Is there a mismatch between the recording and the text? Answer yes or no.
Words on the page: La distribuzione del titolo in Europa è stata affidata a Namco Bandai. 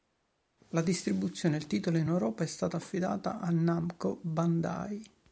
no